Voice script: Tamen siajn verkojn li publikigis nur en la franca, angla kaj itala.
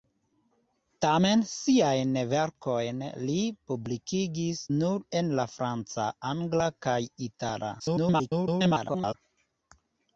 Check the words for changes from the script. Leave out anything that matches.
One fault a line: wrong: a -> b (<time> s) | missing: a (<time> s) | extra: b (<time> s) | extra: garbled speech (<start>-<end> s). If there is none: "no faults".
extra: garbled speech (7.8-9.1 s)